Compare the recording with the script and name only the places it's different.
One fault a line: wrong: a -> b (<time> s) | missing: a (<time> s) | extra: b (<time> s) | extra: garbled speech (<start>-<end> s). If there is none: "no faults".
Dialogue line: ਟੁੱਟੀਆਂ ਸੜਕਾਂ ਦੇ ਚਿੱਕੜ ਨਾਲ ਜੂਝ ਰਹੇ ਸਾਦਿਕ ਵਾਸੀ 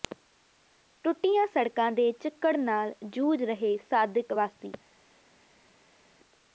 no faults